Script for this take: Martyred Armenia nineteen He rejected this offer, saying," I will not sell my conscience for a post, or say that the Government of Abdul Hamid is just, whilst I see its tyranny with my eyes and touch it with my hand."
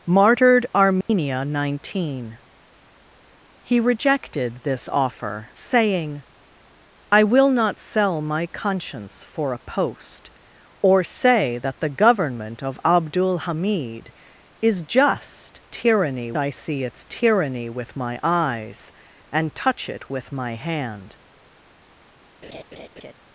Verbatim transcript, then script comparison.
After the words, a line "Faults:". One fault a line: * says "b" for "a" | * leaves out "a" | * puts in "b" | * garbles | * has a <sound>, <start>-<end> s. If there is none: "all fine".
Martyred Armenia nineteen He rejected this offer, saying," I will not sell my conscience for a post, or say that the Government of Abdul Hamid is just, tyranny I see its tyranny with my eyes and touch it with my hand."
Faults:
* has a dropout, 1.0-1.1 s
* says "tyranny" for "whilst"
* has a laugh, 22.4-23.1 s